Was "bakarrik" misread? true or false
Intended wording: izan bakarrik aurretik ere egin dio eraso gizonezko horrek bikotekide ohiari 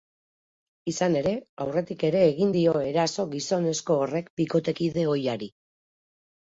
true